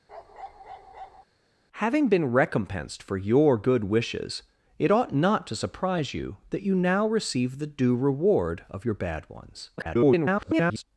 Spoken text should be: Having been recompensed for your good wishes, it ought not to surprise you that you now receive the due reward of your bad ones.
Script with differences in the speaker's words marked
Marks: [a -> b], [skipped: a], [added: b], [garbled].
Having been recompensed for your good wishes, it ought not to surprise you that you now receive the due reward of your bad ones. [garbled]